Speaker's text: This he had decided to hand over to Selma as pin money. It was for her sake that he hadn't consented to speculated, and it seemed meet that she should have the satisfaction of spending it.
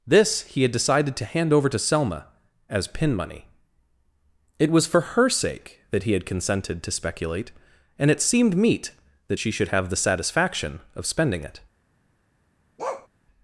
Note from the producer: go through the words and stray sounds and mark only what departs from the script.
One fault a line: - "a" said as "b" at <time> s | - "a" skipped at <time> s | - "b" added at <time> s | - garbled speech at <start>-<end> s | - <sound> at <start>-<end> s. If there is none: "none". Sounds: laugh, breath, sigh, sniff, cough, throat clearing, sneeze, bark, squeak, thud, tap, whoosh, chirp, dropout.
- "hadn't" said as "had" at 6.1 s
- "speculated" said as "speculate" at 6.9 s
- bark at 12.8-13.1 s